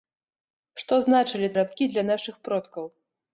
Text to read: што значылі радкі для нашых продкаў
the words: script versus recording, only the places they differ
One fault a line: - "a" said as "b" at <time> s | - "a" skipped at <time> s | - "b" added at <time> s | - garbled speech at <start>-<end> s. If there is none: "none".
none